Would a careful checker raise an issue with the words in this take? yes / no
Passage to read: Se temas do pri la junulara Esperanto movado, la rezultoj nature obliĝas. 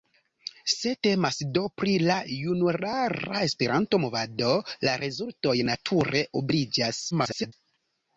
yes